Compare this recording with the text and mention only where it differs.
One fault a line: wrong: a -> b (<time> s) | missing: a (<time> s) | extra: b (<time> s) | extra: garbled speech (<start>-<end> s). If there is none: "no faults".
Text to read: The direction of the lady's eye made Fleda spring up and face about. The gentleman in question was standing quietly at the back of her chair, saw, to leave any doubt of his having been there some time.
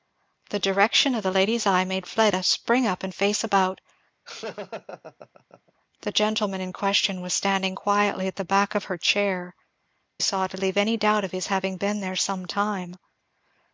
no faults